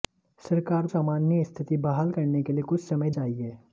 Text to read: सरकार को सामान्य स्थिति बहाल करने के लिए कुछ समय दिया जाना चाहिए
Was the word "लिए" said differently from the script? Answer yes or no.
no